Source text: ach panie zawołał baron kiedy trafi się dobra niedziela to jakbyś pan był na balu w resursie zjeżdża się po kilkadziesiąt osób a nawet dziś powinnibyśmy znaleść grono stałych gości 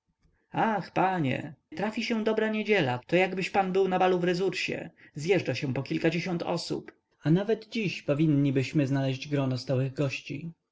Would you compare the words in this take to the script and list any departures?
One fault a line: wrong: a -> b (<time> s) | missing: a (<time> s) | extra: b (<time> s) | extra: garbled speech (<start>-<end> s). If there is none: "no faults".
missing: zawołał baron kiedy (1.5 s)